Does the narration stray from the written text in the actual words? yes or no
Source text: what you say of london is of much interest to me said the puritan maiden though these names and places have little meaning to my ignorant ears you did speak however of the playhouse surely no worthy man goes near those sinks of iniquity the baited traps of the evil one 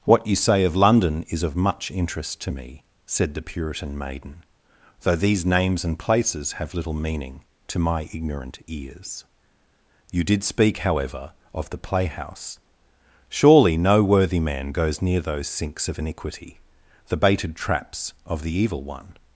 no